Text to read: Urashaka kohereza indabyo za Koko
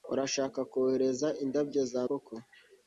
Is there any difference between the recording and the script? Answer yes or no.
no